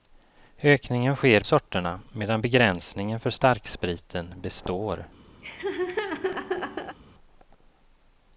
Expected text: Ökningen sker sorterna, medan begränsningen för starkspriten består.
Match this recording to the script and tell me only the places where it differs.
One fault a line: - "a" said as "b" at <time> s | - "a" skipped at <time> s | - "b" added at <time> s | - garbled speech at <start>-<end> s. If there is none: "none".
none